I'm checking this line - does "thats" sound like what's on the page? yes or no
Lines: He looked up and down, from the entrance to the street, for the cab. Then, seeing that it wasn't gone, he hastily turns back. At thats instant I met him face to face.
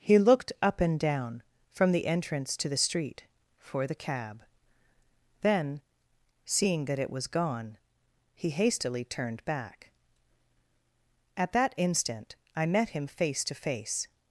no